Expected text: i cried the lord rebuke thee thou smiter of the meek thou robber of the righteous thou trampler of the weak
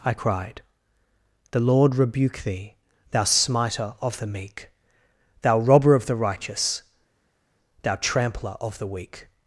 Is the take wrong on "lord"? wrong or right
right